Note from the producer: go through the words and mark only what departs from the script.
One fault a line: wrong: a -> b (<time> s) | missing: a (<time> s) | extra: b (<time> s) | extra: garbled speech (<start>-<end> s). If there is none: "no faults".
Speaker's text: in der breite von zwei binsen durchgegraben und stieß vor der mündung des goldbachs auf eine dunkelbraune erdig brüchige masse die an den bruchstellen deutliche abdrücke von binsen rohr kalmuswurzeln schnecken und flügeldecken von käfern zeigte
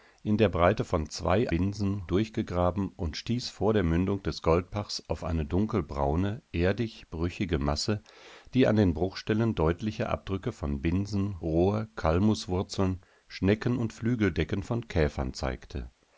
no faults